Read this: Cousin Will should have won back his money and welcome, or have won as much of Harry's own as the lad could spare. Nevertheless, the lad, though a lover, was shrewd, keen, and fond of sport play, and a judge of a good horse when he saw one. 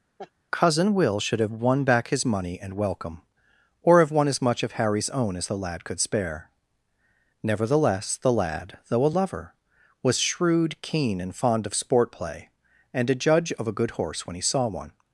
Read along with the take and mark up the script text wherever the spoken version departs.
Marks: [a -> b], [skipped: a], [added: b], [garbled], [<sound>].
[laugh] Cousin Will should have won back his money and welcome, or have won as much of Harry's own as the lad could spare. Nevertheless, the lad, though a lover, was shrewd, keen, and fond of sport play, and a judge of a good horse when he saw one.